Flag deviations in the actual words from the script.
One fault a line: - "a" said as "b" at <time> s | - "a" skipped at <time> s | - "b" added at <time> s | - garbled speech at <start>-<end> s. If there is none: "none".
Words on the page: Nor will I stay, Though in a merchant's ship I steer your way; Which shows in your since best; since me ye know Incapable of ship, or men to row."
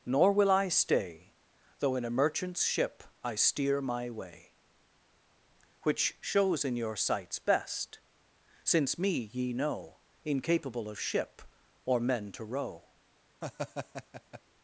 - "your" said as "my" at 3.8 s
- "since" said as "sights" at 7.0 s